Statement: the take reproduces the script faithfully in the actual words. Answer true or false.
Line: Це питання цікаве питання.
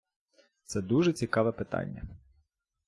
false